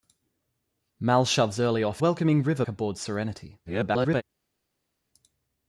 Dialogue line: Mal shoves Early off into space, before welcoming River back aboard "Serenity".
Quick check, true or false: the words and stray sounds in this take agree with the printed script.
false